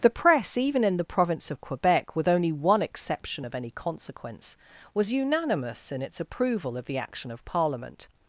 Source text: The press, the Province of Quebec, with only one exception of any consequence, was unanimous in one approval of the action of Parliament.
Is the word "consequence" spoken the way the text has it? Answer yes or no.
yes